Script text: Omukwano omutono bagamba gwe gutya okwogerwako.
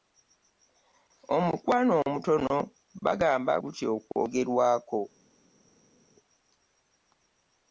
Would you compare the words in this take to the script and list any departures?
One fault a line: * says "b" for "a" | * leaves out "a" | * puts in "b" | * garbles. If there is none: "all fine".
* leaves out "gwe"